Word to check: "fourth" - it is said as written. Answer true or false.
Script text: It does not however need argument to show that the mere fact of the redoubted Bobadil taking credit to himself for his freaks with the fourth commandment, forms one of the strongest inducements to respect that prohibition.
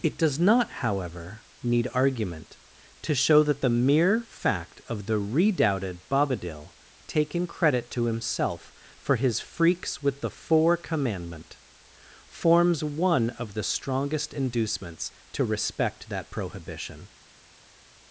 false